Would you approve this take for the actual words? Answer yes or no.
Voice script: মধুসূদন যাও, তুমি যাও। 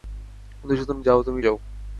yes